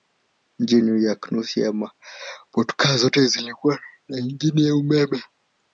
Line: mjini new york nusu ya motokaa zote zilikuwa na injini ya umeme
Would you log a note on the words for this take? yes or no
no